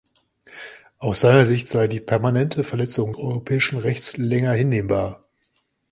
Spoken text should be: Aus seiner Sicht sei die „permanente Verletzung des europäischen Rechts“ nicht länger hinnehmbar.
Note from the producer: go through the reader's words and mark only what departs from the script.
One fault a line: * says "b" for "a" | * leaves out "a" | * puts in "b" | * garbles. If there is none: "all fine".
* leaves out "des"
* leaves out "nicht"